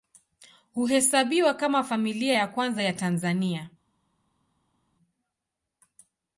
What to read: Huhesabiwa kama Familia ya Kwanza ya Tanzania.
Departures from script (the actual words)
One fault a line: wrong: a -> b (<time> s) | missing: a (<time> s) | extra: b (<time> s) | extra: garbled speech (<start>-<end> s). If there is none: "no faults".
no faults